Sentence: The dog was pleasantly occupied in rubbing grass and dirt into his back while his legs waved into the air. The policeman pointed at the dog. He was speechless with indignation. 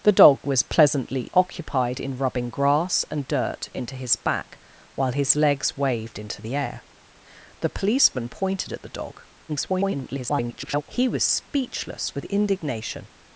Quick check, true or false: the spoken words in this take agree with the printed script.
false